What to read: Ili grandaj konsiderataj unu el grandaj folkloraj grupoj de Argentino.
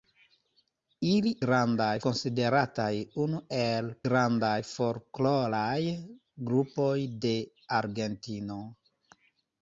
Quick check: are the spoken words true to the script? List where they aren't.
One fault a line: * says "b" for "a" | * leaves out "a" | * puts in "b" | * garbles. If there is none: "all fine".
all fine